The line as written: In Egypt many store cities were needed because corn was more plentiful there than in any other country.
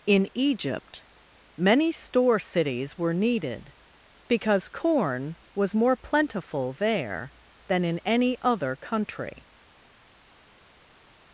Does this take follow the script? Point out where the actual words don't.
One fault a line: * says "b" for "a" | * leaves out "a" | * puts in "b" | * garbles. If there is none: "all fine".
all fine